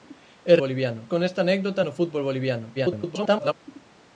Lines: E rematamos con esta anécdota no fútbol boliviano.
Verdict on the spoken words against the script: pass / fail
fail